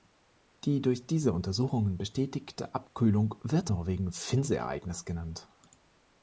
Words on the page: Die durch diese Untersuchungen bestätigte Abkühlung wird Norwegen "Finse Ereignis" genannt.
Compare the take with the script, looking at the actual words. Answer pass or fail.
pass